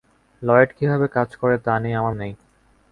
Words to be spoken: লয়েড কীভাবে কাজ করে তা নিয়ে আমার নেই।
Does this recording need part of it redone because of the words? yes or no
no